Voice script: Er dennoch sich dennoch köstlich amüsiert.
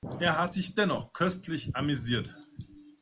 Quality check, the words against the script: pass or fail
fail